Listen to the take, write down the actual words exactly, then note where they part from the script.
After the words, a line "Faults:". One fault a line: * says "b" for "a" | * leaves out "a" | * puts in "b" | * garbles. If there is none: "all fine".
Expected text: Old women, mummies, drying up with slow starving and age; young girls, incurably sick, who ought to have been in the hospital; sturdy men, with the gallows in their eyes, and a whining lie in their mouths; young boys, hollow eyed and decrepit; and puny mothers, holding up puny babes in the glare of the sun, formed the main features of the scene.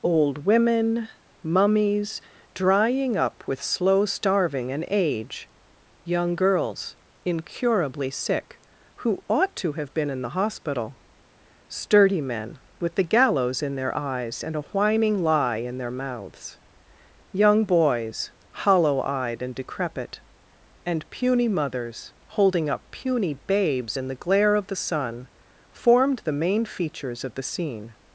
Old women, mummies, drying up with slow starving and age; young girls, incurably sick, who ought to have been in the hospital; sturdy men, with the gallows in their eyes, and a whining lie in their mouths; young boys, hollow eyed and decrepit; and puny mothers, holding up puny babes in the glare of the sun, formed the main features of the scene.
Faults:
all fine